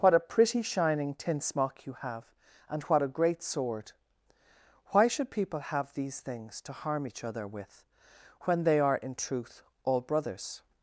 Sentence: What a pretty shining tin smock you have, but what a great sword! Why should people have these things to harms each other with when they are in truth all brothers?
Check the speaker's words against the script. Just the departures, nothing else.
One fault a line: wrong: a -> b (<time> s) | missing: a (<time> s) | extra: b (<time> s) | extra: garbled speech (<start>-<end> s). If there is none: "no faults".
wrong: but -> and (2.7 s)
wrong: harms -> harm (6.7 s)